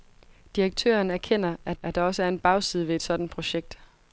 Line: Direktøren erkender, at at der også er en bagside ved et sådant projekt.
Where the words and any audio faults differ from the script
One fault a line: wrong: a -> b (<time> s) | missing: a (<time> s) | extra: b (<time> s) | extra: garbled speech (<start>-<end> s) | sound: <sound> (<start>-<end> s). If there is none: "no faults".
no faults